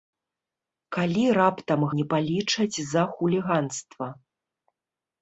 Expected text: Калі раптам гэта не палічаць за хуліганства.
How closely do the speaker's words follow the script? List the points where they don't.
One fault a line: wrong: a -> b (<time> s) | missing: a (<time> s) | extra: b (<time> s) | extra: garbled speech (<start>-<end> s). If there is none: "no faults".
missing: гэта (1.9 s)